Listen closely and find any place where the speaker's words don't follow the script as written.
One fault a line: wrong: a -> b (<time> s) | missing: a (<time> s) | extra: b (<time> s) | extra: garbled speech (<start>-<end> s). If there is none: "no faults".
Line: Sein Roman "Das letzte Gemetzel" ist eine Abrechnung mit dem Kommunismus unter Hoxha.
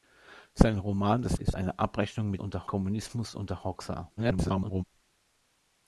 missing: letzte Gemetzel (1.4 s)
wrong: dem -> unter (2.4 s)
extra: garbled speech (4.2-4.8 s)